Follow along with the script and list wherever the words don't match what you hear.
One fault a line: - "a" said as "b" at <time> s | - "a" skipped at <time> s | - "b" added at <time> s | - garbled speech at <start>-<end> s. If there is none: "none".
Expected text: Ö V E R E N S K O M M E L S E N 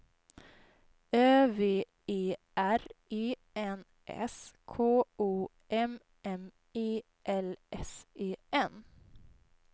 none